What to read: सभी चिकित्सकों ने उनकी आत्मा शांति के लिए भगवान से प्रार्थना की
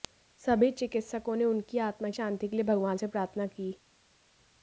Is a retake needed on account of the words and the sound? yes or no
no